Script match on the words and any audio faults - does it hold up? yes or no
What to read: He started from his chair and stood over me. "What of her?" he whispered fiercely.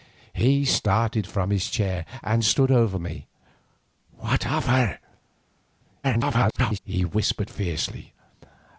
no